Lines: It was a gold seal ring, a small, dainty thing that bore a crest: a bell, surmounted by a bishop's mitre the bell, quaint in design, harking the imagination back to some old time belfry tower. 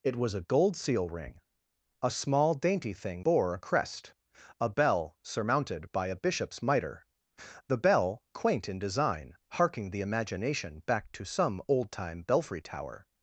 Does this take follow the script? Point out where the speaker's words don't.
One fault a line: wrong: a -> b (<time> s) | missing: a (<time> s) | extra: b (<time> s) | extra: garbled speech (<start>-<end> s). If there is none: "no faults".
missing: that (3.2 s)